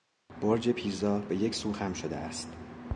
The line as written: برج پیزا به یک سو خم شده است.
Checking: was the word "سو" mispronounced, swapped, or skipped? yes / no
no